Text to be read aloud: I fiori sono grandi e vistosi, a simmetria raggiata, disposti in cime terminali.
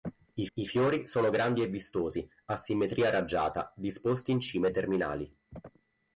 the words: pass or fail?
fail